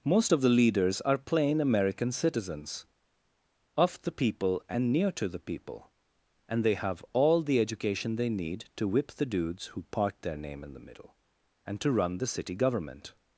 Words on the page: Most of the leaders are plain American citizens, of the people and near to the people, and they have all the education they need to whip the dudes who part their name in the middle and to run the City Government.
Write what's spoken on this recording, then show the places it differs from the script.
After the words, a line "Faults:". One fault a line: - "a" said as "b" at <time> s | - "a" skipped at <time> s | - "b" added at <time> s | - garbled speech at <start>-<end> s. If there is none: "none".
Most of the leaders are plain American citizens, of the people and near to the people, and they have all the education they need to whip the dudes who part their name in the middle and to run the City Government.
Faults:
none